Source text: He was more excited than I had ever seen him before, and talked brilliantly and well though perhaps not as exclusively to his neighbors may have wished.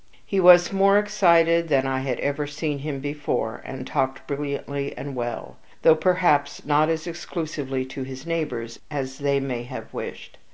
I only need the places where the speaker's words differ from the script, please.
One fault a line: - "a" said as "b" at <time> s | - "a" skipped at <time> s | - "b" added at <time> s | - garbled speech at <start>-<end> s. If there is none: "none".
- "as they" added at 8.9 s